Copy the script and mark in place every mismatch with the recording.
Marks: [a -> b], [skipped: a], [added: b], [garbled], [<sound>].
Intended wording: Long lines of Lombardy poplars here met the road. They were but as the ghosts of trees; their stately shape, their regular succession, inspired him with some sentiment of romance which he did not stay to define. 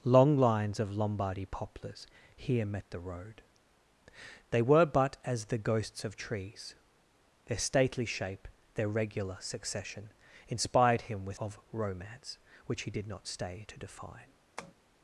Long lines of Lombardy poplars here met the road. They were but as the ghosts of trees; their stately shape, their regular succession, inspired him with [skipped: some sentiment] of romance which he did not stay to define. [tap]